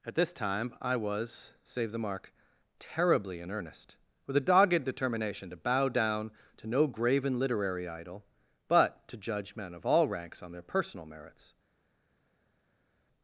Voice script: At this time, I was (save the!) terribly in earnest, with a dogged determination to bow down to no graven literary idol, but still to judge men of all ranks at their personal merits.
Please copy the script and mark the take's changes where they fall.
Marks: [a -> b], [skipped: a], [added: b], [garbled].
At this time, I was (save the!) [added: mark] terribly in earnest, with a dogged determination to bow down to no graven literary idol, but [skipped: still] to judge men of all ranks [at -> on] their personal merits.